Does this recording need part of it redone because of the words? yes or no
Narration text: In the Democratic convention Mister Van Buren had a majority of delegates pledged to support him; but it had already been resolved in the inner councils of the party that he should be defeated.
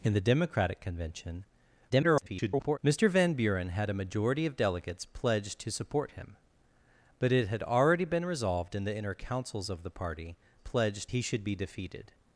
yes